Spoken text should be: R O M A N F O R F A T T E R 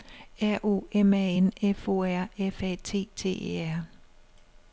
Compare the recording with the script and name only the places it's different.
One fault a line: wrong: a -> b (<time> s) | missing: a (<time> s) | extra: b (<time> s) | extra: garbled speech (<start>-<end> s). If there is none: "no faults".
no faults